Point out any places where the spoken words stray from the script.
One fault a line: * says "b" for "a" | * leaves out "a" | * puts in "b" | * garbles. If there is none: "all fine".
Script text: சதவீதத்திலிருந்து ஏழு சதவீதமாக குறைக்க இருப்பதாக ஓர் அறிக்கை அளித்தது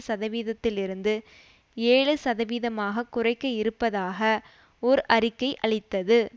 all fine